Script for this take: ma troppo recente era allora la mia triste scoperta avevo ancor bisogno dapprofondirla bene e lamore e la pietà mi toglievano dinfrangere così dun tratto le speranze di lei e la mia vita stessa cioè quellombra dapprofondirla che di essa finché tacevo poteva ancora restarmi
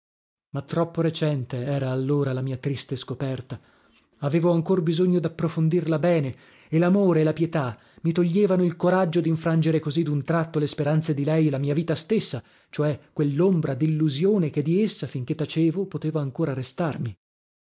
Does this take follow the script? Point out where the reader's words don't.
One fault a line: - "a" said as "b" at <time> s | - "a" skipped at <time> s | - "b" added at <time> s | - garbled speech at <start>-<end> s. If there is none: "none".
- "il coraggio" added at 8.6 s
- "dapprofondirla" said as "dillusione" at 13.7 s